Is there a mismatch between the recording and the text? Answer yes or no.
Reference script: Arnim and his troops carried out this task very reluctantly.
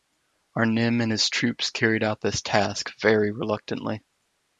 no